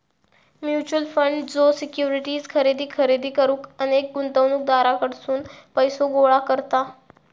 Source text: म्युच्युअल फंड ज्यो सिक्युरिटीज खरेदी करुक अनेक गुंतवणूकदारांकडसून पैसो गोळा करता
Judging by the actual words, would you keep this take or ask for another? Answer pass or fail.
fail